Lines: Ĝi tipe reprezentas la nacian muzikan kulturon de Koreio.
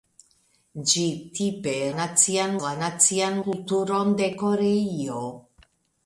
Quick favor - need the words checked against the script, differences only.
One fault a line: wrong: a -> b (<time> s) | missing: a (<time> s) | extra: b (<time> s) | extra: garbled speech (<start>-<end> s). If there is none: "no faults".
wrong: reprezentas -> nacian (2.0 s)
missing: muzikan (3.4 s)